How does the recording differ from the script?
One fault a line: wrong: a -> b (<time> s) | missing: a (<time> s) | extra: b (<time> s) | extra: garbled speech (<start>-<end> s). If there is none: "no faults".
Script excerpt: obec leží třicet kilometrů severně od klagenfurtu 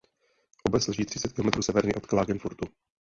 no faults